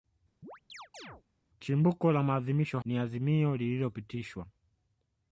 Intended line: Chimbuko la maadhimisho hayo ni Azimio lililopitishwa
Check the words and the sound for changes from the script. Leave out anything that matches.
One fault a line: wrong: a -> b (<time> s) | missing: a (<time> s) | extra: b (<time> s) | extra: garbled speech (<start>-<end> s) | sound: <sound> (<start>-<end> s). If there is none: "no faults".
sound: chirp (0.4-1.2 s)
missing: hayo (2.8 s)